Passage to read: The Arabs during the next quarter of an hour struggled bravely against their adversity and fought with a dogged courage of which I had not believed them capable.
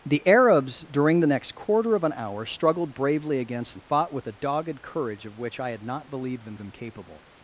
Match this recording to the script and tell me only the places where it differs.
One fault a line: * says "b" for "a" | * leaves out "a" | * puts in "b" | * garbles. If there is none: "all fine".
* leaves out "their adversity"
* puts in "them"